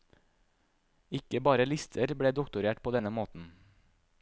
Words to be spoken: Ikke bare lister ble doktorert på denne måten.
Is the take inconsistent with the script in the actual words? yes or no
no